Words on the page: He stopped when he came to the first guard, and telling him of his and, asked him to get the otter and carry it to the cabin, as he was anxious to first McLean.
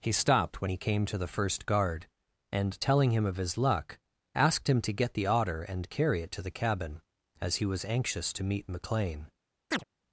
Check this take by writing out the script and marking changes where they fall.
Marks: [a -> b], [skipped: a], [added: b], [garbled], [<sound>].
He stopped when he came to the first guard, and telling him of his [and, -> luck] asked him to get the otter and carry it to the cabin, as he was anxious to [first -> meet] McLean. [chirp]